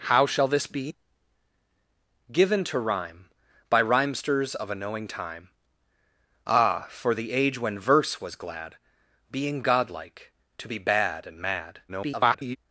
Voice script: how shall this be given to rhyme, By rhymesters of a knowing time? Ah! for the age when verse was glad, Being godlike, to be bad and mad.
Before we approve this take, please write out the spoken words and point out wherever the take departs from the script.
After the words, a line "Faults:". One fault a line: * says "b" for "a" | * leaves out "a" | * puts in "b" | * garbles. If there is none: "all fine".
how shall this be given to rhyme, By rhymesters of a knowing time? Ah! for the age when verse was glad, Being godlike, to be bad and mad. [garbled]
Faults:
* garbles